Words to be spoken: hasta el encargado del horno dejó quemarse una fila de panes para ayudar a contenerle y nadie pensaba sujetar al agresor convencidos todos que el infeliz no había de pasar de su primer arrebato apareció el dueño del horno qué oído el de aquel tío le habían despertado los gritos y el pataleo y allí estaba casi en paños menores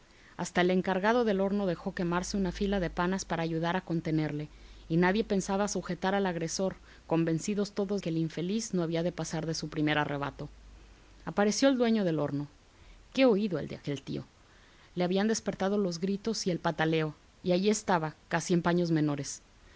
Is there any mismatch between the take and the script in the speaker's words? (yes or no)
no